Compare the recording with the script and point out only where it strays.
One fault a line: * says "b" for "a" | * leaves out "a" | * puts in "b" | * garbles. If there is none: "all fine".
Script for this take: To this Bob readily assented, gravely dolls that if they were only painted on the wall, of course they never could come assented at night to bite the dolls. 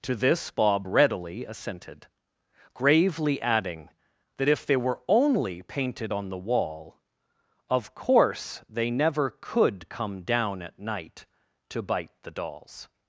* says "adding" for "dolls"
* says "down" for "assented"